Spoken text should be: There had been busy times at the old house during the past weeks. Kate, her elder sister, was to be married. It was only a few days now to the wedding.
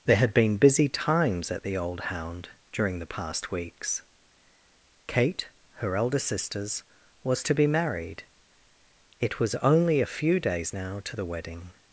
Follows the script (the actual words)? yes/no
no